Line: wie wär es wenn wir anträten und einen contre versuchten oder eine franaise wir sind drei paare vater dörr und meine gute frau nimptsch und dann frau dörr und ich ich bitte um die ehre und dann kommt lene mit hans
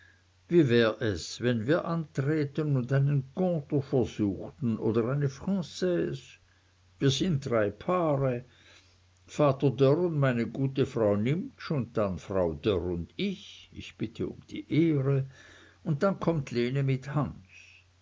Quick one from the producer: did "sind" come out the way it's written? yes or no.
yes